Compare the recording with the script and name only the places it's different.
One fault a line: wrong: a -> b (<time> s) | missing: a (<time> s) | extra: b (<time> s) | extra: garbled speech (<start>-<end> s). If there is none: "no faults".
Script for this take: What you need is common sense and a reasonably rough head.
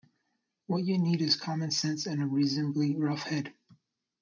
no faults